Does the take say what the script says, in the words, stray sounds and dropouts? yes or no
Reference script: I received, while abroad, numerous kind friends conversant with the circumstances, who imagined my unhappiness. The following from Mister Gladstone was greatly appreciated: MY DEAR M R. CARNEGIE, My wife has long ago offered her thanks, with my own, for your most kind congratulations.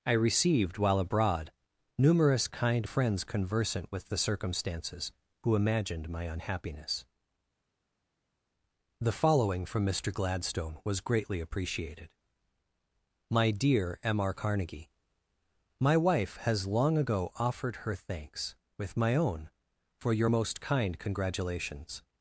yes